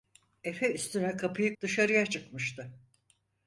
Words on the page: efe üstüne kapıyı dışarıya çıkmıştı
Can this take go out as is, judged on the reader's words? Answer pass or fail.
pass